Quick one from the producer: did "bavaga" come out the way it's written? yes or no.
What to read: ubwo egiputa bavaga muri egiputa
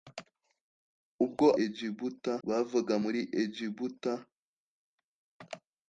yes